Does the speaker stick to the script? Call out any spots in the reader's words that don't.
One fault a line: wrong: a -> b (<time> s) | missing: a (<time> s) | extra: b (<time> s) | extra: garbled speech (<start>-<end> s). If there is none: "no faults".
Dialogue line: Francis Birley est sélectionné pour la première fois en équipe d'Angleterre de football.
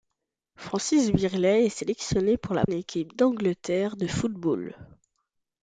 missing: première fois en (2.6 s)